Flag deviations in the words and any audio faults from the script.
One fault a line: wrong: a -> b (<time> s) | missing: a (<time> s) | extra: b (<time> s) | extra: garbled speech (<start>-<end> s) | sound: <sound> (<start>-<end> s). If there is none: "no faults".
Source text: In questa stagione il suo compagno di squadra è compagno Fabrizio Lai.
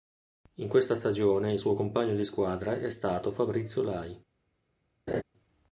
wrong: compagno -> stato (2.9 s)
sound: laugh (5.1-5.2 s)